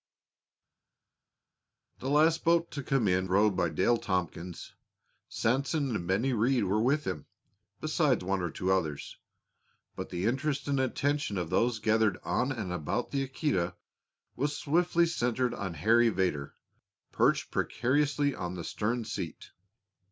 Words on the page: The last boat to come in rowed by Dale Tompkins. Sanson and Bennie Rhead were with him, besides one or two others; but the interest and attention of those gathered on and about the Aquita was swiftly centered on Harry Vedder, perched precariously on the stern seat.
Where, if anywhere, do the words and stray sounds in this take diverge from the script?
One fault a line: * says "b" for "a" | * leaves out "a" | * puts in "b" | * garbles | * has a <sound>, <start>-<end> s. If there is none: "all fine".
all fine